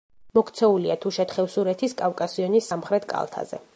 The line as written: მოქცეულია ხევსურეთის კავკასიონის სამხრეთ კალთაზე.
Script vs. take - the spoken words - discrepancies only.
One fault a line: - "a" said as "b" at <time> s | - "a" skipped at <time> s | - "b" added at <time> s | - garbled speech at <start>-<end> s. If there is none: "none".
- "თუშეთ" added at 1.0 s